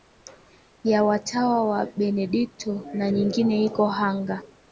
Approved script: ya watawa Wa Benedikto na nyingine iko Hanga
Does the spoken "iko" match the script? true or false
true